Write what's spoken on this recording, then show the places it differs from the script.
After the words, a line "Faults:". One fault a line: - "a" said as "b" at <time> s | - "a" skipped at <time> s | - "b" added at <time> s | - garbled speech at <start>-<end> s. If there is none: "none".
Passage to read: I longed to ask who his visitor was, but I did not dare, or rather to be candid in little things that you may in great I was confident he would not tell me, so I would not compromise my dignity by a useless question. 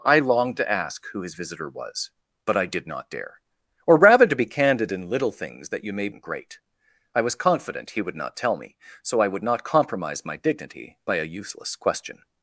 I longed to ask who his visitor was, but I did not dare, or rather to be candid in little things that you may in great I was confident he would not tell me, so I would not compromise my dignity by a useless question.
Faults:
none